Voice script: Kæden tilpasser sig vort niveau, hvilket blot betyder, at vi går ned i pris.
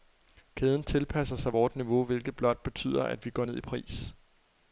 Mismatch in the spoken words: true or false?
false